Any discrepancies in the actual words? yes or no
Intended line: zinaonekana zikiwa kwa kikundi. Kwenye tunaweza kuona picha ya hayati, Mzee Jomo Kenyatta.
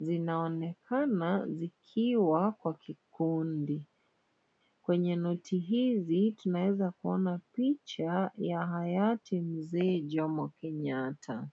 yes